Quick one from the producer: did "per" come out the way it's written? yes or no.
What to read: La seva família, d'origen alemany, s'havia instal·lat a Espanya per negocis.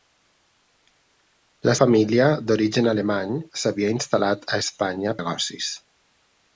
no